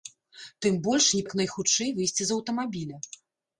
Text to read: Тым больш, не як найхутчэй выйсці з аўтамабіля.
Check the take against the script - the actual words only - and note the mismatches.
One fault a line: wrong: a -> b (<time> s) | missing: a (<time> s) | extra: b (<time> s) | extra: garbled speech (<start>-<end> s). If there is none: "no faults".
no faults